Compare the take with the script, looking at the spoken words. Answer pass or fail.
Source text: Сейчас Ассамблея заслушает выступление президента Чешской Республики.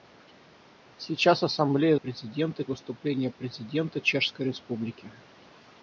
fail